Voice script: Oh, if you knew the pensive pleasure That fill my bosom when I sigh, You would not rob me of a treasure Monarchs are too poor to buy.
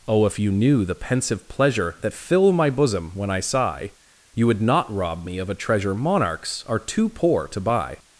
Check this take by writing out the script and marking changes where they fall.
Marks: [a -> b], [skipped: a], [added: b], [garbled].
Oh, if you knew the pensive pleasure That fill my bosom when I sigh, You would not rob me of a treasure Monarchs are too poor to buy.